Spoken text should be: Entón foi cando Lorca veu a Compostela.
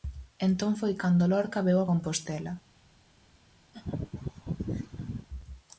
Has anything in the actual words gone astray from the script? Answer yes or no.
no